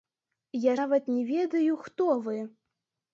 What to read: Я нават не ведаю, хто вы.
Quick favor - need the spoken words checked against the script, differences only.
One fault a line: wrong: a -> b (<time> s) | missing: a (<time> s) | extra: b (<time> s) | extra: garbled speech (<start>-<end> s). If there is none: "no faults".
no faults